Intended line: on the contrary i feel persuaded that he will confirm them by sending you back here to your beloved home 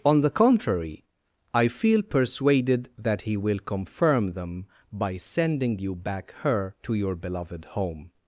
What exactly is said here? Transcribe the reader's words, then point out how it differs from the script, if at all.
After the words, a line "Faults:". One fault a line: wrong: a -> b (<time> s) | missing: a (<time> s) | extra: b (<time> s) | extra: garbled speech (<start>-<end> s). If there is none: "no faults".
on the contrary i feel persuaded that he will confirm them by sending you back her to your beloved home
Faults:
wrong: here -> her (6.4 s)